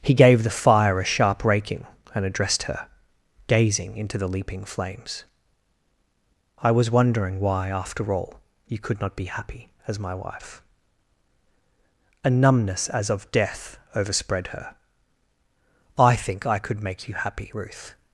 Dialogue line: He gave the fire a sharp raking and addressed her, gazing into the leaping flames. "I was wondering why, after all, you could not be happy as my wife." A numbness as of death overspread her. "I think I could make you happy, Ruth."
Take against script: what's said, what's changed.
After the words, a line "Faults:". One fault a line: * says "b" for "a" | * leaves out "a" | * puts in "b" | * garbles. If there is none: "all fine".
He gave the fire a sharp raking and addressed her, gazing into the leaping flames. "I was wondering why, after all, you could not be happy as my wife." A numbness as of death overspread her. "I think I could make you happy, Ruth."
Faults:
all fine